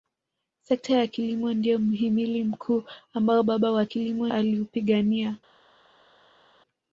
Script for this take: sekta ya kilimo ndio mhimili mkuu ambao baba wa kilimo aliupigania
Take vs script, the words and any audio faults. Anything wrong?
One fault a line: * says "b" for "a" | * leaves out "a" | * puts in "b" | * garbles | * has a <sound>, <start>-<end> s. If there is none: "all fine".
all fine